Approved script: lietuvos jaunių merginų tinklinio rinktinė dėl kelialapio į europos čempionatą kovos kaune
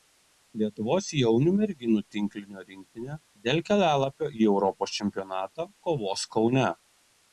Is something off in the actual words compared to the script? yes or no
no